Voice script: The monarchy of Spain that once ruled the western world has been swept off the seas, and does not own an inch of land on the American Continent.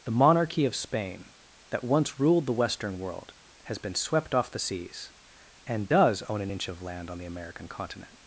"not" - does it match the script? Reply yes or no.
no